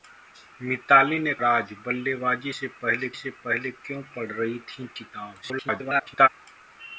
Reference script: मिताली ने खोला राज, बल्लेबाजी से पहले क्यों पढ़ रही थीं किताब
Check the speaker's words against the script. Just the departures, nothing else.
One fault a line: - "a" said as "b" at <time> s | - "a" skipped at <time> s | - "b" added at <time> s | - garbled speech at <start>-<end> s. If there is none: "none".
- "खोला" skipped at 1.3 s
- "से पहले" added at 3.1 s
- garbled speech at 5.4-6.3 s